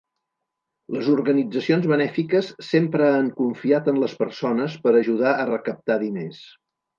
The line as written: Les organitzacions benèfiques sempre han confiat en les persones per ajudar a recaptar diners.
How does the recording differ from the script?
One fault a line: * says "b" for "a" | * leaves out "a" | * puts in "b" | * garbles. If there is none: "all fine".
all fine